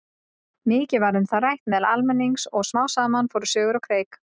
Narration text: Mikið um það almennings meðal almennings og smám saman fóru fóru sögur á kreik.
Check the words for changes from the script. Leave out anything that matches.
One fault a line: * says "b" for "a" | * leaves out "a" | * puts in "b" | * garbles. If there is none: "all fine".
* puts in "var"
* says "rætt" for "almennings"
* leaves out "fóru"